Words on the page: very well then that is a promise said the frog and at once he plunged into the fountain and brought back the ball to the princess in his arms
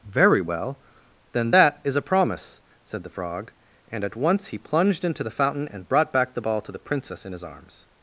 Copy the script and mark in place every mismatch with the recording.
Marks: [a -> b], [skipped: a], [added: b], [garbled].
very well then that is a promise said the frog and at once he plunged into the fountain and brought back the ball to the princess in his arms